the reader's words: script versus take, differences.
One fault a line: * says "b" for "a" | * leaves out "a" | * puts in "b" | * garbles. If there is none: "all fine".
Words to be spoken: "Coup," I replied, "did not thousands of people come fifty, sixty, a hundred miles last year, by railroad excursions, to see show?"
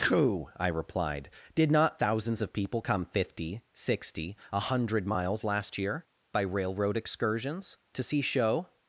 all fine